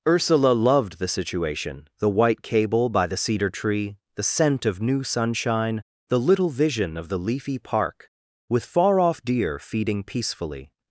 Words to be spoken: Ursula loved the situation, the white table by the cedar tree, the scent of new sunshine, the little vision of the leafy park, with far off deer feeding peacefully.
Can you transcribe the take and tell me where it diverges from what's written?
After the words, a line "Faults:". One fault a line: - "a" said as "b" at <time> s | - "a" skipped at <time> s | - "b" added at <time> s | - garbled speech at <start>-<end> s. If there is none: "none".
Ursula loved the situation, the white cable by the cedar tree, the scent of new sunshine, the little vision of the leafy park, with far off deer feeding peacefully.
Faults:
- "table" said as "cable" at 2.4 s